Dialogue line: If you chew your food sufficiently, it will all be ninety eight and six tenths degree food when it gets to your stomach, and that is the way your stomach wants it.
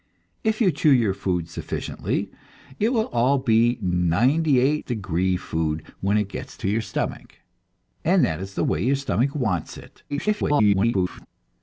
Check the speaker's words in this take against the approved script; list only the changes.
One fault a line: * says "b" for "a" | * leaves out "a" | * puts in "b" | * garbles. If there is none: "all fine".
* leaves out "and six tenths"
* garbles